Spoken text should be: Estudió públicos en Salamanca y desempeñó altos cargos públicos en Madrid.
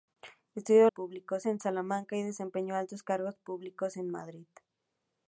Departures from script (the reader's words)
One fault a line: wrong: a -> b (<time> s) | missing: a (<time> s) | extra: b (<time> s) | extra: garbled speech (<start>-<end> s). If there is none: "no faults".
no faults